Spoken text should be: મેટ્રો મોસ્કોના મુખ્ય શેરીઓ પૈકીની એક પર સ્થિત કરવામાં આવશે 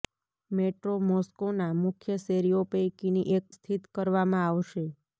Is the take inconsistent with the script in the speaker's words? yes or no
yes